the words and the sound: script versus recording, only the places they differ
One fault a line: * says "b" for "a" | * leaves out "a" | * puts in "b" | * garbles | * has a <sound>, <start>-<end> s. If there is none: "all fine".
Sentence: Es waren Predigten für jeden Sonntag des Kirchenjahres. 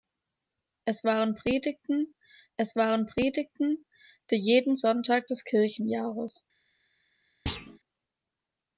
* puts in "es waren Predigten"
* has a thud, 7.5-7.8 s